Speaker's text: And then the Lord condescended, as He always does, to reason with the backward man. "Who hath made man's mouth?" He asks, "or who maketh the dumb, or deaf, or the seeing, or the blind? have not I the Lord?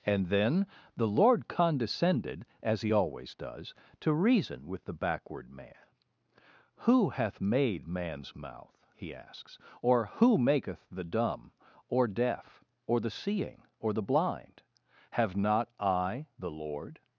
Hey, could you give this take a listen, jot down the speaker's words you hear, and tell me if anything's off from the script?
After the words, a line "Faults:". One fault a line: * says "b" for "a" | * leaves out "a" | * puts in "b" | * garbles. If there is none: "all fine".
And then the Lord condescended, as He always does, to reason with the backward man. "Who hath made man's mouth?" He asks, "or who maketh the dumb, or deaf, or the seeing, or the blind? have not I the Lord?
Faults:
all fine